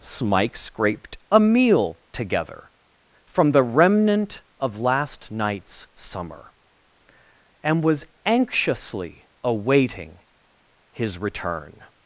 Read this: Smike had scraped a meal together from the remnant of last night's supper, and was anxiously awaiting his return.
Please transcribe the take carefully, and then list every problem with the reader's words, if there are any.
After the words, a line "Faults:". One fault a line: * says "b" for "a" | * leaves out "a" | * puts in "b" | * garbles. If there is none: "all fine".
Smike scraped a meal together from the remnant of last night's summer, and was anxiously awaiting his return.
Faults:
* leaves out "had"
* says "summer" for "supper"